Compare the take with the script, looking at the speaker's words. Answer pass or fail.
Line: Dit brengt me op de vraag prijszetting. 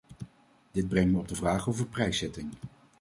fail